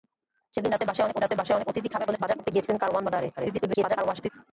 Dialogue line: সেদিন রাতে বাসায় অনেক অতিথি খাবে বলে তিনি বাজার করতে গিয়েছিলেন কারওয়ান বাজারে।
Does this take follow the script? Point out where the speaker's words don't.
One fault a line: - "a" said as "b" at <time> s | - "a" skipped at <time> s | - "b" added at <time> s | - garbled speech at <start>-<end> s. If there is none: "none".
- "রাতে বাসায় অনেক" added at 1.2 s
- "তিনি" skipped at 2.2 s
- garbled speech at 3.4-4.3 s